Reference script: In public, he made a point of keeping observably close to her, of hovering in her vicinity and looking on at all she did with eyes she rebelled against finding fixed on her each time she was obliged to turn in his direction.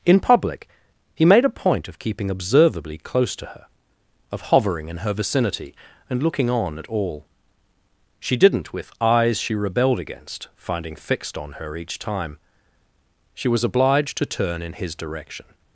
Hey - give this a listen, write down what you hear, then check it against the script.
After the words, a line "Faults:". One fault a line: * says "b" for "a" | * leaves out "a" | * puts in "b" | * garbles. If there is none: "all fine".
In public, he made a point of keeping observably close to her, of hovering in her vicinity and looking on at all she didn't with eyes she rebelled against finding fixed on her each time she was obliged to turn in his direction.
Faults:
* says "didn't" for "did"